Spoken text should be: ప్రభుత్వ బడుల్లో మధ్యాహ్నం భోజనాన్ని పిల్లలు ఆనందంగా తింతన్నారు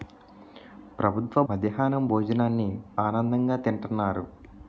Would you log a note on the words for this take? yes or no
yes